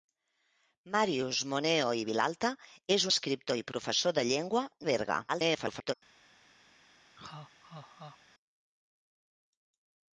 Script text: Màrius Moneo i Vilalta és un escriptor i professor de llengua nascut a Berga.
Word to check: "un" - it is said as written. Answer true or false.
false